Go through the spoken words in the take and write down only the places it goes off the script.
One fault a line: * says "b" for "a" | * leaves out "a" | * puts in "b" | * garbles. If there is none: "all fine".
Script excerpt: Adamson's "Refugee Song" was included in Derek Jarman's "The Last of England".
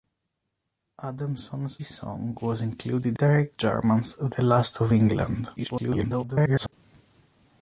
* leaves out "Refugee"
* leaves out "in"
* garbles